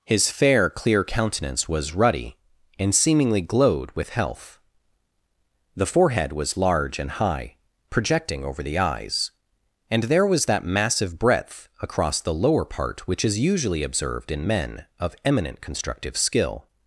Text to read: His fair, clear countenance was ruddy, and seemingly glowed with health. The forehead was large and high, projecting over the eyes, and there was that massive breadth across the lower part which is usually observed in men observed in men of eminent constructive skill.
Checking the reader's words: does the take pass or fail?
fail